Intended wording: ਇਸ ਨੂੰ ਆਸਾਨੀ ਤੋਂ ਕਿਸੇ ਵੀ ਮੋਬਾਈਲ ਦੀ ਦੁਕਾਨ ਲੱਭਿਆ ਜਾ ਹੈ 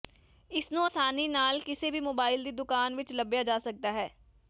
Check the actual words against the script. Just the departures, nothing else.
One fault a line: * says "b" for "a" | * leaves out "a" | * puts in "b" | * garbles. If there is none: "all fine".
* says "ਨਾਲ" for "ਤੋਂ"
* puts in "ਵਿੱਚ"
* puts in "ਸਕਦਾ"